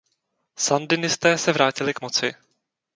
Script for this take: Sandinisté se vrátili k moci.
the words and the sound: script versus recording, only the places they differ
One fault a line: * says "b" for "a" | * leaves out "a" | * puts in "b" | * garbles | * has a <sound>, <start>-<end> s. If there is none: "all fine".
all fine